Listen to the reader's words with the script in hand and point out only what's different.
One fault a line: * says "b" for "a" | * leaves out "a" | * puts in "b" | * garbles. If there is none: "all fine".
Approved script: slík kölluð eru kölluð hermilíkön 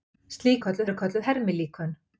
all fine